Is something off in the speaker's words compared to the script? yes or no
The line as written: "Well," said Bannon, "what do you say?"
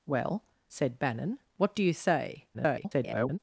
yes